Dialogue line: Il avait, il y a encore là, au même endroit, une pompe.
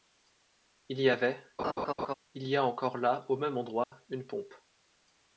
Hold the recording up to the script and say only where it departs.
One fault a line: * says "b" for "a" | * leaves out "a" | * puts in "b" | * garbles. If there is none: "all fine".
* puts in "y"